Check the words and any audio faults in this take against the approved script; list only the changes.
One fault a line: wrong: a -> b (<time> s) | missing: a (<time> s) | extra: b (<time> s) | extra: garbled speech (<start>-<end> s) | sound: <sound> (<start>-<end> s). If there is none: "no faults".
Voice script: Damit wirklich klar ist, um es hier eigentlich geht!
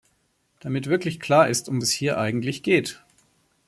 no faults